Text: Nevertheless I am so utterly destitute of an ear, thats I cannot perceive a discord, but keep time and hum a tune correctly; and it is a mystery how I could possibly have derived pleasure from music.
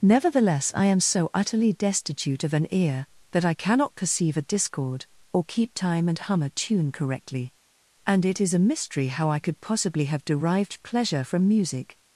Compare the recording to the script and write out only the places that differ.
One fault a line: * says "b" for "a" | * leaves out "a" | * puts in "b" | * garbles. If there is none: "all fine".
* says "that" for "thats"
* says "or" for "but"